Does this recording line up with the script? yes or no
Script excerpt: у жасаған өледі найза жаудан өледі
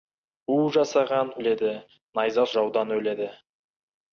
yes